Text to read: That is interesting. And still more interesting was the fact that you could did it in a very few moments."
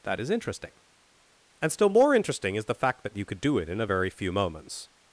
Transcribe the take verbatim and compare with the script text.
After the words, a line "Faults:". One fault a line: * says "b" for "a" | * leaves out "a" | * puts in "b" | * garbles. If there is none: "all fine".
That is interesting. And still more interesting is the fact that you could do it in a very few moments."
Faults:
* says "is" for "was"
* says "do" for "did"